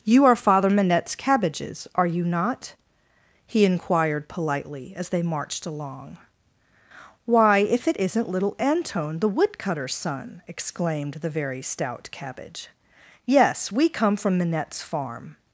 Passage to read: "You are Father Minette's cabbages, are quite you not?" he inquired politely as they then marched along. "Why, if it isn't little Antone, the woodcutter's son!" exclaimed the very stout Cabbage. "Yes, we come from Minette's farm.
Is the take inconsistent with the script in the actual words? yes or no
yes